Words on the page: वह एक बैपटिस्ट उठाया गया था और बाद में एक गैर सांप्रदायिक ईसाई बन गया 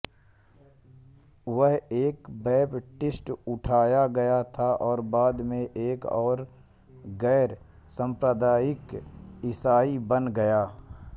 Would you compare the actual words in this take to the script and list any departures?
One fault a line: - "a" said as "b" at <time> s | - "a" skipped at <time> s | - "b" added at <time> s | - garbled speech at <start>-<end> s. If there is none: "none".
none